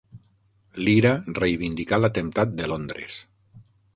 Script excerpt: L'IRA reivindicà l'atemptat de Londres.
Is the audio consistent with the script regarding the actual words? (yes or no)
yes